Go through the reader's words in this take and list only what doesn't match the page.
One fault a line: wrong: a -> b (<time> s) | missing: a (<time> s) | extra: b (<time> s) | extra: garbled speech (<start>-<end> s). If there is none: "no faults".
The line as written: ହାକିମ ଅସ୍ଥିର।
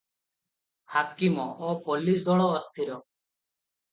extra: ଓ ପୋଲିସ ଦଳ (1.6 s)